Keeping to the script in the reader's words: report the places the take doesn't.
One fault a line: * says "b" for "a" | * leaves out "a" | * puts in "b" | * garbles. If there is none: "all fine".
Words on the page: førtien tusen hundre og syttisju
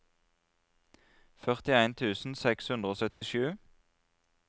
* puts in "seks"